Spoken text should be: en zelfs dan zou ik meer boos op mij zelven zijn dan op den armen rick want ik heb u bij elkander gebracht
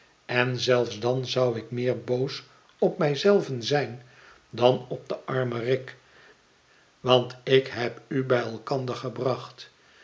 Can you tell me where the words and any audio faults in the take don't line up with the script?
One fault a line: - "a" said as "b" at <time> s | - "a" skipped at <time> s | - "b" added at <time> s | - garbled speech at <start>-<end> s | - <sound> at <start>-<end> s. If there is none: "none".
none